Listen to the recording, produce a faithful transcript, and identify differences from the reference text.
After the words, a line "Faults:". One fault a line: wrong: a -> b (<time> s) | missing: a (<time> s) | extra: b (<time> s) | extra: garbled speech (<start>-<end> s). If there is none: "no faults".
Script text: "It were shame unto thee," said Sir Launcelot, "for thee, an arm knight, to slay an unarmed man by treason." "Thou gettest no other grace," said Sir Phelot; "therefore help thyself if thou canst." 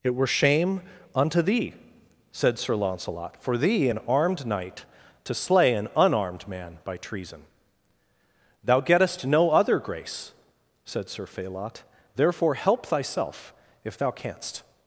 "It were shame unto thee," said Sir Launcelot, "for thee, an armed knight, to slay an unarmed man by treason." "Thou gettest no other grace," said Sir Phelot; "therefore help thyself if thou canst."
Faults:
wrong: arm -> armed (4.1 s)